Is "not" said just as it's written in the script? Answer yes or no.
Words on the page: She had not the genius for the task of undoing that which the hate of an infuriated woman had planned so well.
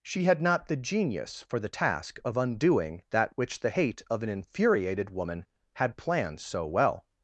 yes